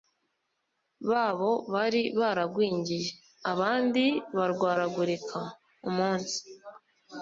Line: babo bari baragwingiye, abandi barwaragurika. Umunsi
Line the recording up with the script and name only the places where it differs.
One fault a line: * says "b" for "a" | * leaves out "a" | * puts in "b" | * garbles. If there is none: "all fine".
all fine